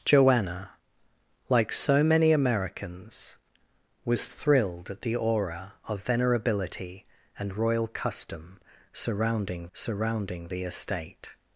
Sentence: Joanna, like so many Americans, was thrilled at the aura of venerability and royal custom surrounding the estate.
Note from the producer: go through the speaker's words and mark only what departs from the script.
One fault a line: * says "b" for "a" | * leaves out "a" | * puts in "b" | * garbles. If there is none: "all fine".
* puts in "surrounding"